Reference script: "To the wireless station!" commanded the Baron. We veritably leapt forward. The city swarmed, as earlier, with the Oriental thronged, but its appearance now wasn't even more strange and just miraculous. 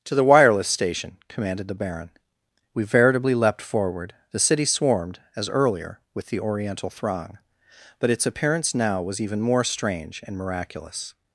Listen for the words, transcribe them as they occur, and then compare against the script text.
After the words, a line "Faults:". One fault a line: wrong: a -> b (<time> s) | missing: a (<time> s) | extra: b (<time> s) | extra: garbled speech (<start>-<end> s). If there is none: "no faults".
"To the wireless station!" commanded the Baron. We veritably leapt forward. The city swarmed, as earlier, with the Oriental throng, but its appearance now was even more strange and miraculous.
Faults:
wrong: thronged -> throng (6.9 s)
wrong: wasn't -> was (9.0 s)
missing: just (10.4 s)